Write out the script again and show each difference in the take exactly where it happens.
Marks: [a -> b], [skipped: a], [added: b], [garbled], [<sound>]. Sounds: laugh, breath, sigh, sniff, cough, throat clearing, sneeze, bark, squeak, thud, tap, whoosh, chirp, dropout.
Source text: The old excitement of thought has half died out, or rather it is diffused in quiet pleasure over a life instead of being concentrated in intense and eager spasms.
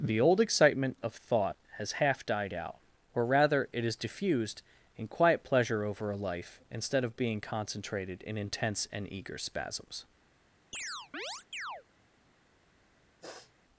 The old excitement of thought has half died out, or rather it is diffused in quiet pleasure over a life instead of being concentrated in intense and eager spasms. [chirp] [sniff]